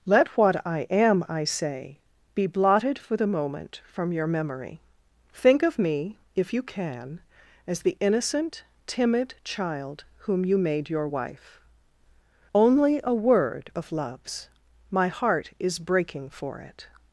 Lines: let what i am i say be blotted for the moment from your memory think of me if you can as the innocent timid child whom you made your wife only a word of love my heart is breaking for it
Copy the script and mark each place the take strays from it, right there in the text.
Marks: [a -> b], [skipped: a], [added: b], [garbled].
let what i am i say be blotted for the moment from your memory think of me if you can as the innocent timid child whom you made your wife only a word of [love -> loves] my heart is breaking for it